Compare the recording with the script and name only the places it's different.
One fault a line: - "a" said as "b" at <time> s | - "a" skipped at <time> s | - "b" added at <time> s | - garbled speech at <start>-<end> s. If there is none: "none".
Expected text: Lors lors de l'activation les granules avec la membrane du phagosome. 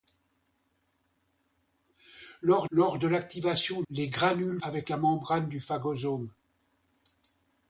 none